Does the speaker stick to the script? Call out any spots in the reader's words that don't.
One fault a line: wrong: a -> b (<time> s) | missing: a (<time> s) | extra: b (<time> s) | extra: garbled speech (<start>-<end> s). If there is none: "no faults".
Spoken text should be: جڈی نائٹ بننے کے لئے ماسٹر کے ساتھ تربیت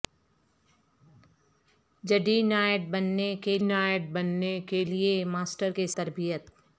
extra: نائٹ بننے کے (3.6 s)
missing: ساتھ (5.9 s)